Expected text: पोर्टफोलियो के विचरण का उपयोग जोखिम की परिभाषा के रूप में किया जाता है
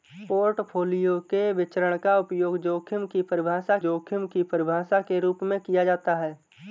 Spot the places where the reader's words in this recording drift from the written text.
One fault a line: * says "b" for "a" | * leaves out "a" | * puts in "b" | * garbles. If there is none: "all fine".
* puts in "जोखिम की परिभाषा"